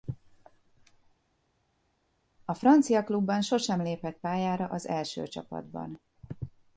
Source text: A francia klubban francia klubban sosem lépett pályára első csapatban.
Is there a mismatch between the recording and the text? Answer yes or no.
yes